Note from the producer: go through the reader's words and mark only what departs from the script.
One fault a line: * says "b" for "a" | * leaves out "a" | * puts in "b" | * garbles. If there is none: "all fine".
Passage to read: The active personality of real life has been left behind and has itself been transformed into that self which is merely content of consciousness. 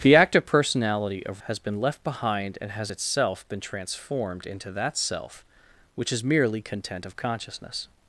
* leaves out "real life"